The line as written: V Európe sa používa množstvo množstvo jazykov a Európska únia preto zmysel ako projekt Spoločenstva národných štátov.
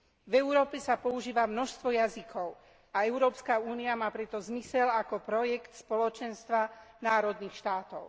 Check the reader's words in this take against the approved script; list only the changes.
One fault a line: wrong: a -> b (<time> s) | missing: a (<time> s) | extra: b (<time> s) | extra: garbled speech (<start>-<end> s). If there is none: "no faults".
missing: množstvo (1.9 s)
extra: má (4.0 s)